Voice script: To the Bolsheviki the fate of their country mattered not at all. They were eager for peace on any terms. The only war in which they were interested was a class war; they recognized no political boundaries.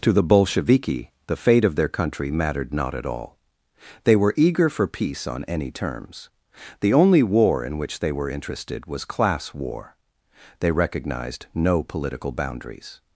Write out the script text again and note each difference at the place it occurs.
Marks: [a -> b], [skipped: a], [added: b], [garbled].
To the Bolsheviki the fate of their country mattered not at all. They were eager for peace on any terms. The only war in which they were interested was [skipped: a] class war; they recognized no political boundaries.